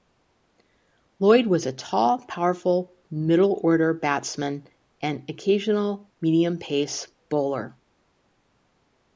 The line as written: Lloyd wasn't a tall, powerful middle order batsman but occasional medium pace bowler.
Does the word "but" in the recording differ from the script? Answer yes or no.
yes